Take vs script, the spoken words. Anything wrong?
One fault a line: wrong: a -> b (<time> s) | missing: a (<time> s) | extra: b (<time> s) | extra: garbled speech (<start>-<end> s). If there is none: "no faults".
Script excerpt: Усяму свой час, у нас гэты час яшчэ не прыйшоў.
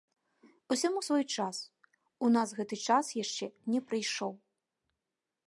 no faults